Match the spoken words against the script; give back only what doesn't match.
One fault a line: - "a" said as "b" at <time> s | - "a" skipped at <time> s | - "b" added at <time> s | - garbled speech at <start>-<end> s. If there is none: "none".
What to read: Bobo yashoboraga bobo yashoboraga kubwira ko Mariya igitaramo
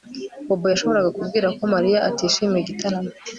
- "bobo yashoboraga" skipped at 1.1 s
- "atishimiye" added at 2.1 s